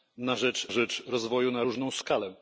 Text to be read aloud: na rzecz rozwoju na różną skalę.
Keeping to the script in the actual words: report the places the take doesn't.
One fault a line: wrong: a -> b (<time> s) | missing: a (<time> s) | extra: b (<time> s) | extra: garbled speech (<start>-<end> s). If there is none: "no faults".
extra: rzecz (0.7 s)